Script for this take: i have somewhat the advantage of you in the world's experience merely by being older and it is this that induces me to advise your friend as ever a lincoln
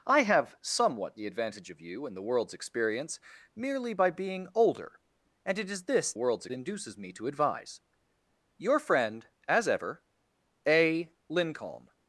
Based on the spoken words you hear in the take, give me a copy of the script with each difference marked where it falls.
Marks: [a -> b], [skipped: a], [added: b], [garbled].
i have somewhat the advantage of you in the world's experience merely by being older and it is this [that -> world's] induces me to advise your friend as ever a lincoln